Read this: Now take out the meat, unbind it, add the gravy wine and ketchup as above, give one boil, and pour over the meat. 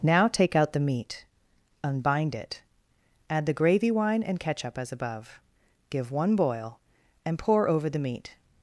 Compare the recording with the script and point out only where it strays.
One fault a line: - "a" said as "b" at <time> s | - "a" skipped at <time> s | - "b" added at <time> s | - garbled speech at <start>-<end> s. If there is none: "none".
none